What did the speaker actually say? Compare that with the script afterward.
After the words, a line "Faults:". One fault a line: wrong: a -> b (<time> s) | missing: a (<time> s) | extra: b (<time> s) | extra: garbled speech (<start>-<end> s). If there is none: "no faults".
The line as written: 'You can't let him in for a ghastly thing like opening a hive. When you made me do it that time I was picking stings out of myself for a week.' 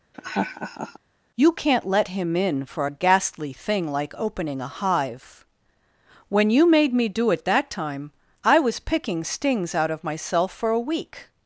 'You can't let him in for a ghastly thing like opening a hive. When you made me do it that time I was picking stings out of myself for a week.'
Faults:
no faults